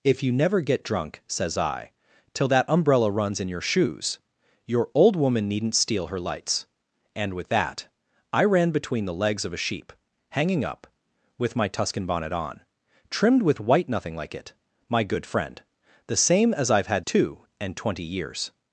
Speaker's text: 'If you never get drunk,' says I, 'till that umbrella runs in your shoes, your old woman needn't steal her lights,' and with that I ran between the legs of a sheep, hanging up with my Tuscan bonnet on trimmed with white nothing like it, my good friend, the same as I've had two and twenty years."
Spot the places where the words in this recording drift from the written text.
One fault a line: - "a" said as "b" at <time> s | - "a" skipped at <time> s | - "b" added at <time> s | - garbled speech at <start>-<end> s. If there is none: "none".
none